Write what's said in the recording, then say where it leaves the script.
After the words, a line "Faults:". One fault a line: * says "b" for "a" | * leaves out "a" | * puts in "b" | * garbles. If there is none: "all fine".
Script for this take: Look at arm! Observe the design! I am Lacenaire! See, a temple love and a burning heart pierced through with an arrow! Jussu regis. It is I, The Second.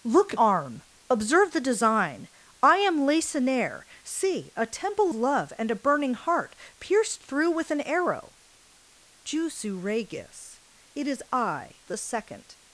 Look at arm! Observe the design! I am Lacenaire! See, a temple love and a burning heart pierced through with an arrow! Jussu regis. It is I, The Second.
Faults:
all fine